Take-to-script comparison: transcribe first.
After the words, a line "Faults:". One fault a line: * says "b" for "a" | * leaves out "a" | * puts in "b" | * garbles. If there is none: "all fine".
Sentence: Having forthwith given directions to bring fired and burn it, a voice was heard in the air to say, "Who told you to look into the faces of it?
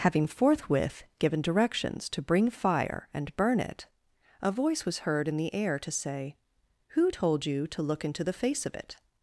Having forthwith given directions to bring fire and burn it, a voice was heard in the air to say, "Who told you to look into the face of it?
Faults:
* says "fire" for "fired"
* says "face" for "faces"